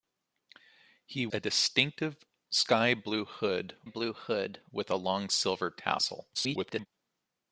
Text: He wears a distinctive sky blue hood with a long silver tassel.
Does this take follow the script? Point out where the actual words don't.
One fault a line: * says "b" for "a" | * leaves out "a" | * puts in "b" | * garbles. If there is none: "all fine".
* leaves out "wears"
* puts in "blue hood"
* garbles